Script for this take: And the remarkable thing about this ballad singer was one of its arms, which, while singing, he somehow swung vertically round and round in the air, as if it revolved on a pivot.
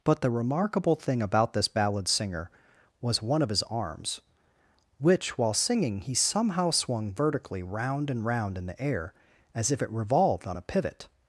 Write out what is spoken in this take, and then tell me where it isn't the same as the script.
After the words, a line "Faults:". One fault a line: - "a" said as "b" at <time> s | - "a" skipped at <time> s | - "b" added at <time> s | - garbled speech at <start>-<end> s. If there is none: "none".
But the remarkable thing about this ballad singer was one of his arms, which, while singing, he somehow swung vertically round and round in the air, as if it revolved on a pivot.
Faults:
- "And" said as "But" at 0.0 s
- "its" said as "his" at 3.5 s